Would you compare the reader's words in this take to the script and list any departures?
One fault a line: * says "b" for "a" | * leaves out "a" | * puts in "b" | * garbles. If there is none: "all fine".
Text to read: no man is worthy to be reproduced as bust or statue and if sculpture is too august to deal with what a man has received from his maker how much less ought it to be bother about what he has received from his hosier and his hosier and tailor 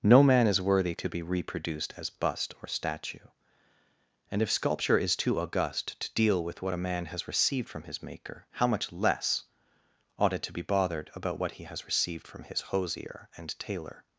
* says "bothered" for "bother"
* leaves out "his hosier and"